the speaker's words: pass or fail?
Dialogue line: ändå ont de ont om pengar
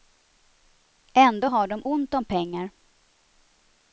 fail